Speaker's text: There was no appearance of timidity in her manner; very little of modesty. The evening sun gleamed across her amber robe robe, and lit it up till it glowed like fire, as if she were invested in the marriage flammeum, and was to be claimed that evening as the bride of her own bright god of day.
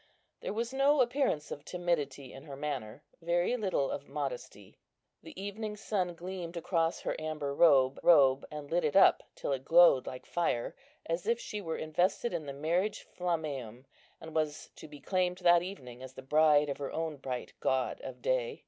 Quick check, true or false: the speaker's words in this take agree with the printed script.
true